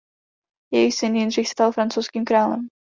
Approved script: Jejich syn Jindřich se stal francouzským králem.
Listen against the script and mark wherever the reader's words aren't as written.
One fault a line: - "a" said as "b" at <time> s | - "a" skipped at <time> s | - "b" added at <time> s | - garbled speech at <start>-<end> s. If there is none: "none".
- "se" skipped at 1.5 s